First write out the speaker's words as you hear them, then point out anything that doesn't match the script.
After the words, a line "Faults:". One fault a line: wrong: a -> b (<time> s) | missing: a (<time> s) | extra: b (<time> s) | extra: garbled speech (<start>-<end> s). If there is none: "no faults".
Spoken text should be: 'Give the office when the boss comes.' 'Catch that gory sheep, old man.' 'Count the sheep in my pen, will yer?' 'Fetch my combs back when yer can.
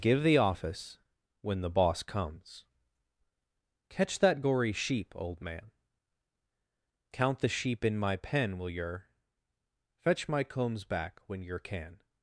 'Give the office when the boss comes.' 'Catch that gory sheep, old man.' 'Count the sheep in my pen, will yer?' 'Fetch my combs back when yer can.
Faults:
no faults